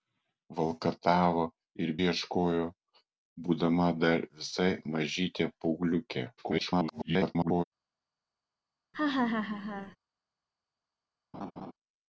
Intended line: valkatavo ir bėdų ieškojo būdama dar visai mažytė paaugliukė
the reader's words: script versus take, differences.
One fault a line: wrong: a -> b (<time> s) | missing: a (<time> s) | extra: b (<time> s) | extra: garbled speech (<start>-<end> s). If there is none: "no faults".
missing: bėdų (1.9 s)
extra: garbled speech (6.4-7.6 s)